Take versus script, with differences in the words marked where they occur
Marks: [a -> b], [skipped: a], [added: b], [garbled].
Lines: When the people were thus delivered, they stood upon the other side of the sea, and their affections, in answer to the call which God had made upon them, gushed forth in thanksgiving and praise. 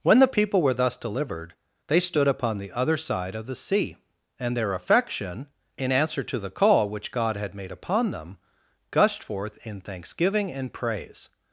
When the people were thus delivered, they stood upon the other side of the sea, and their [affections, -> affection] in answer to the call which God had made upon them, gushed forth in thanksgiving and praise.